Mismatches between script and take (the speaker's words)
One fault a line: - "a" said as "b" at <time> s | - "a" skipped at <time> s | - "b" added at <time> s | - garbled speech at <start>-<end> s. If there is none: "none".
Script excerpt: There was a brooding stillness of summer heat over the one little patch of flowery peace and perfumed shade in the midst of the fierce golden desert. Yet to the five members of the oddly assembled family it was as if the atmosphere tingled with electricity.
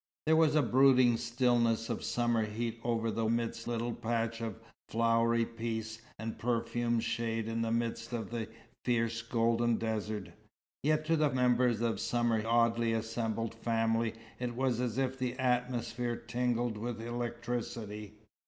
- "one" said as "midst" at 3.3 s
- "five" skipped at 11.3 s
- "the" said as "summer" at 12.0 s